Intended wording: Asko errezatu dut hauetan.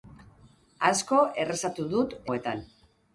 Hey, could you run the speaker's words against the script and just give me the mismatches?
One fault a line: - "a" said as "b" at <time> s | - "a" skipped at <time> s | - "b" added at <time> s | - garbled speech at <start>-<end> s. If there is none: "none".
none